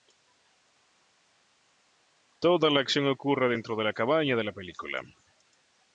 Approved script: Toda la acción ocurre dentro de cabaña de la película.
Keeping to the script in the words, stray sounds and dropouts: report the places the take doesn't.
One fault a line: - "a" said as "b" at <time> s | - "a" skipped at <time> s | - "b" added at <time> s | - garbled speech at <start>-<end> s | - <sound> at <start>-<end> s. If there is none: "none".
- "la" added at 3.8 s